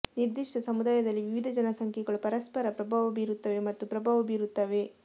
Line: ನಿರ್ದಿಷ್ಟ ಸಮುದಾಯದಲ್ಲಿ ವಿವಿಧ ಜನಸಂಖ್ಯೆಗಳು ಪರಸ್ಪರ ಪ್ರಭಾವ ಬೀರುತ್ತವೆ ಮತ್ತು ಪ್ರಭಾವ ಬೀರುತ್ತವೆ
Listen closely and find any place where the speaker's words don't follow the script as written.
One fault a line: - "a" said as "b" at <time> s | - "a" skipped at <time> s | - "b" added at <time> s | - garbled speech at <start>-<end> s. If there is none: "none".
none